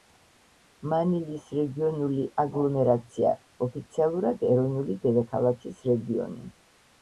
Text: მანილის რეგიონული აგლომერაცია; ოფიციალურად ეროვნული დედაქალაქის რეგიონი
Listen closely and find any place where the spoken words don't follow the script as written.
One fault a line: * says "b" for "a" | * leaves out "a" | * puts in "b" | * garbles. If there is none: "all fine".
all fine